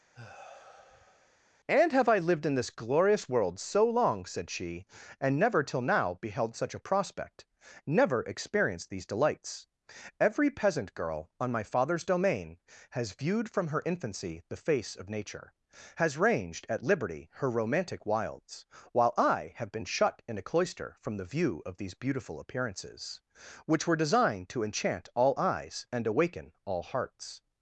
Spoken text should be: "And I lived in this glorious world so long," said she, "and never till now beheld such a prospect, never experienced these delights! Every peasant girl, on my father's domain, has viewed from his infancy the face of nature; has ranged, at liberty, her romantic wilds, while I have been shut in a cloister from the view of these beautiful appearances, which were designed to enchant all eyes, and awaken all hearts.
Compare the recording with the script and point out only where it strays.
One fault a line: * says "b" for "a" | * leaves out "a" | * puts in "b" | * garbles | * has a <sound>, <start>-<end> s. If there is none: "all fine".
* has a sigh, 0.1-1.4 s
* puts in "have"
* says "her" for "his"